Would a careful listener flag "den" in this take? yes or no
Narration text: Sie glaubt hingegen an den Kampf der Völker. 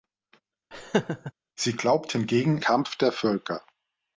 yes